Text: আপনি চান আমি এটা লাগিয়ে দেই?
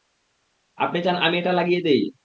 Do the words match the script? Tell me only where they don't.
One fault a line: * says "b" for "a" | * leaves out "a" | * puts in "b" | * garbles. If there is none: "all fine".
all fine